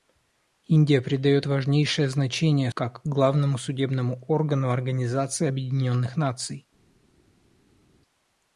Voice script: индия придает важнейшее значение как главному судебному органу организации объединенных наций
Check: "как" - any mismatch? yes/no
no